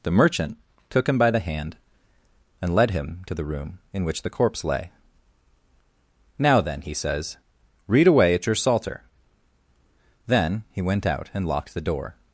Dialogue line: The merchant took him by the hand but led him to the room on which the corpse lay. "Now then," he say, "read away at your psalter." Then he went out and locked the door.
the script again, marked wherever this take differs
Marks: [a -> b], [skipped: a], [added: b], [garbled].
The merchant took him by the hand [but -> and] led him to the room [on -> in] which the corpse lay. "Now then," he [say, -> says] "read away at your psalter." Then he went out and locked the door.